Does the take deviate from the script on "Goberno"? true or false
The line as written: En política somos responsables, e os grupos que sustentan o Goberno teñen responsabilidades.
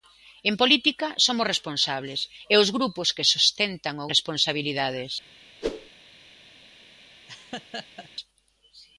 true